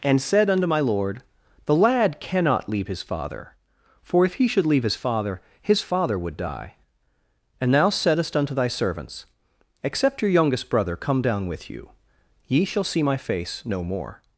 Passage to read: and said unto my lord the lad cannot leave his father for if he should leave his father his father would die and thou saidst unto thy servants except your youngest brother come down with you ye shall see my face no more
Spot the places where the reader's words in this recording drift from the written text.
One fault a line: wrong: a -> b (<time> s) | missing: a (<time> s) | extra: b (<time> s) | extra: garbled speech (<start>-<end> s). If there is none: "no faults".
no faults